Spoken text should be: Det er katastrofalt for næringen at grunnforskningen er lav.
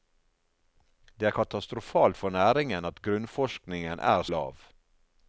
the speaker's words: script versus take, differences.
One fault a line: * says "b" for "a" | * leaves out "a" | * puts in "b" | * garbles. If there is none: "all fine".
all fine